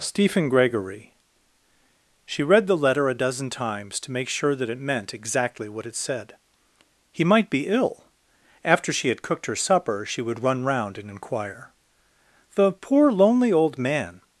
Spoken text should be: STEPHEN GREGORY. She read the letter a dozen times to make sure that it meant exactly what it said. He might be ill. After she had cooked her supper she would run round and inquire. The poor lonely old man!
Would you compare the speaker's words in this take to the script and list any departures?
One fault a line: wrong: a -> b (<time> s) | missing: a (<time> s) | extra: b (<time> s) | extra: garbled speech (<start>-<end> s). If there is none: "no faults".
no faults